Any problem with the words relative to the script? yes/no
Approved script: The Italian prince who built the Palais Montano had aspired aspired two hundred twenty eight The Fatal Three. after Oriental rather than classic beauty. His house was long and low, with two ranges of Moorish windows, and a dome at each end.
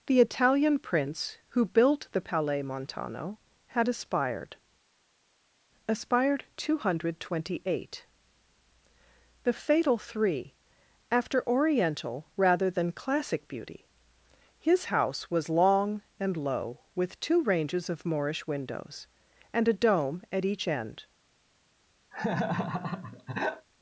no